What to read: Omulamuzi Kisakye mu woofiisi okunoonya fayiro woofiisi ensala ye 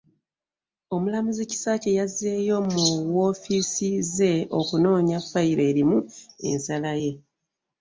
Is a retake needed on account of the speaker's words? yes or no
yes